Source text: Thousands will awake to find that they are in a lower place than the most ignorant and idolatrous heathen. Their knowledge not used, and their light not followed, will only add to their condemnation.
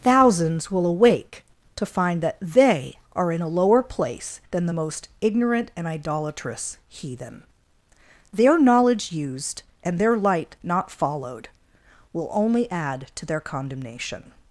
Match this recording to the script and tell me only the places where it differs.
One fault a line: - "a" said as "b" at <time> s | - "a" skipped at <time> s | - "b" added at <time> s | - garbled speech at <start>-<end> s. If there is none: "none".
- "not" skipped at 9.1 s